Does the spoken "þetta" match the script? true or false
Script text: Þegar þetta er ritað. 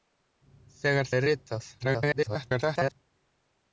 false